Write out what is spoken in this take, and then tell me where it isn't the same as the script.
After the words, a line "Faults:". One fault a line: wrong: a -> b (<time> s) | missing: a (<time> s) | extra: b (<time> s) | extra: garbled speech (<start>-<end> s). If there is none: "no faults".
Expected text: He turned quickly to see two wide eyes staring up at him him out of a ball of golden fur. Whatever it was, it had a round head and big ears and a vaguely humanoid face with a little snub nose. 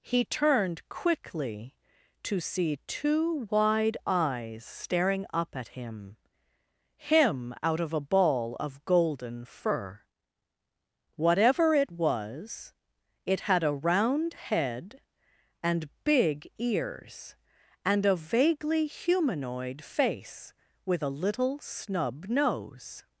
He turned quickly to see two wide eyes staring up at him him out of a ball of golden fur. Whatever it was, it had a round head and big ears and a vaguely humanoid face with a little snub nose.
Faults:
no faults